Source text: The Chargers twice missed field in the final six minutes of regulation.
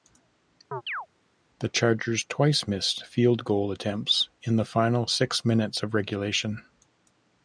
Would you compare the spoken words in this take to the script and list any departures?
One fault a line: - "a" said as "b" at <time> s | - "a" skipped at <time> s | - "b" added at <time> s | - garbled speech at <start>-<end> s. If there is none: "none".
- "goal attempts" added at 3.4 s